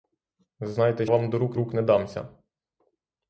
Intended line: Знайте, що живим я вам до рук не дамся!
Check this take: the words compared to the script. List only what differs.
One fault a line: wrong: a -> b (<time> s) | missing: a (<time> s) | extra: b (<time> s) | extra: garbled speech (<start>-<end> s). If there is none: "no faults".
missing: що живим я (1.1 s)
extra: рук (1.5 s)